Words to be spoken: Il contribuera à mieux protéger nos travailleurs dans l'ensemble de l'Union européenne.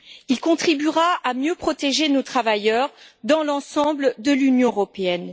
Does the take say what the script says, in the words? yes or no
yes